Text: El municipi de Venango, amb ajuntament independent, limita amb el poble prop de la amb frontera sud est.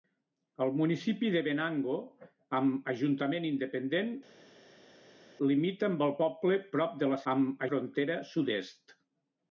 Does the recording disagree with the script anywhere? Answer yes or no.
no